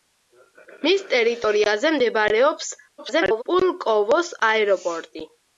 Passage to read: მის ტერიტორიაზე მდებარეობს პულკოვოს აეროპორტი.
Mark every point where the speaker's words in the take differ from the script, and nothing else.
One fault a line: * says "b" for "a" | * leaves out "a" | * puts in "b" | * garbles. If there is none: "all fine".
* garbles